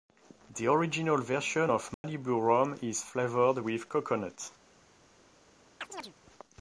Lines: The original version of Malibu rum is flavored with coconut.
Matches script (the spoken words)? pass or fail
pass